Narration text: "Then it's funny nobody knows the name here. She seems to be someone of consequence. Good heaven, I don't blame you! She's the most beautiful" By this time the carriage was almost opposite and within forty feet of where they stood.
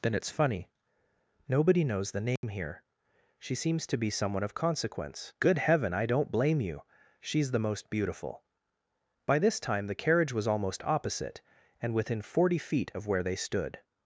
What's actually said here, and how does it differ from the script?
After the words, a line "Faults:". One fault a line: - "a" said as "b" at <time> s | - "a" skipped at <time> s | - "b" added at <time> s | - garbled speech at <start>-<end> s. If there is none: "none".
"Then it's funny nobody knows the name here. She seems to be someone of consequence. Good heaven, I don't blame you! She's the most beautiful" By this time the carriage was almost opposite and within forty feet of where they stood.
Faults:
none